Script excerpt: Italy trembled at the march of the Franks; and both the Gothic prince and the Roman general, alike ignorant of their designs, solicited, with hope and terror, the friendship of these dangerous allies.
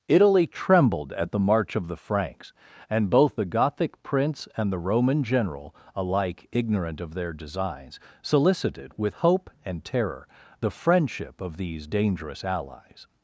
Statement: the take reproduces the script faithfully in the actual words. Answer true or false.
true